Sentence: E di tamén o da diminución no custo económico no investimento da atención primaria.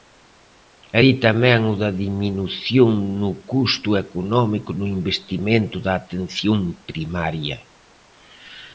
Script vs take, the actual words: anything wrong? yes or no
no